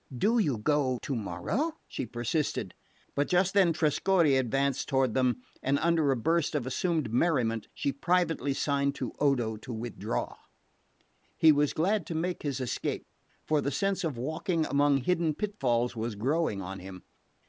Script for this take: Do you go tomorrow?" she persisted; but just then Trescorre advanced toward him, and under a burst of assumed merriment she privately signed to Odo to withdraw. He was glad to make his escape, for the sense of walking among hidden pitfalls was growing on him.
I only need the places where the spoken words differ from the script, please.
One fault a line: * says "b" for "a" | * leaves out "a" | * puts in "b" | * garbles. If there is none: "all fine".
* says "them" for "him"